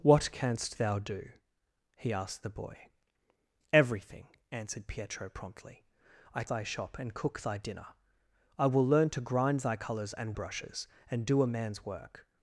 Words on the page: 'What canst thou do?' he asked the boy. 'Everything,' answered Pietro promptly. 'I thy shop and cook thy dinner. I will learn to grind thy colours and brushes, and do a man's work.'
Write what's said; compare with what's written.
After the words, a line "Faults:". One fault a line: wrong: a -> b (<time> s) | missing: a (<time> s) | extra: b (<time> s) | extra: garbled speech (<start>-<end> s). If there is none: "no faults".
'What canst thou do?' he asked the boy. 'Everything,' answered Pietro promptly. 'I thy shop and cook thy dinner. I will learn to grind thy colours and brushes, and do a man's work.'
Faults:
no faults